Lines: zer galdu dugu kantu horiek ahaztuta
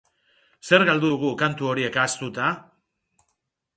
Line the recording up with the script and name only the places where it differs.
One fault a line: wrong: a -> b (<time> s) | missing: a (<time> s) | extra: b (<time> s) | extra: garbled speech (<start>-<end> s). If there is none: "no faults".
no faults